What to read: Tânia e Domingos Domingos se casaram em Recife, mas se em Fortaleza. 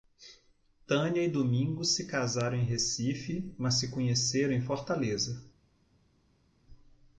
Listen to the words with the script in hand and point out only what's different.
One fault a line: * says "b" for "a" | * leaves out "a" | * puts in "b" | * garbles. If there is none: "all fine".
* leaves out "Domingos"
* puts in "conheceram"